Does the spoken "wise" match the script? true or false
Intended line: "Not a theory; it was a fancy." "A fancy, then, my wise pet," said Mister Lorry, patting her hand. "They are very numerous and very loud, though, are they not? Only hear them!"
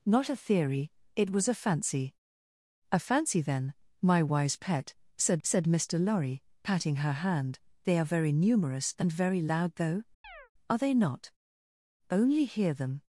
true